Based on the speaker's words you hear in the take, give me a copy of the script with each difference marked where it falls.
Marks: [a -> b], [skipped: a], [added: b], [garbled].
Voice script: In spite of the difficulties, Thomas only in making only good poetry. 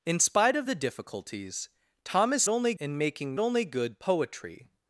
In spite of the difficulties, Thomas only in making only good poetry.